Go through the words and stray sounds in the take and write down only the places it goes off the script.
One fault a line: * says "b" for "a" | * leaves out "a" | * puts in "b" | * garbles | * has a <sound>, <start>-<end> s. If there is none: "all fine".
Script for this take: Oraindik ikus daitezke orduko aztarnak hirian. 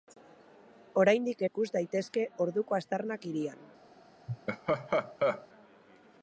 * has a laugh, 4.3-5.5 s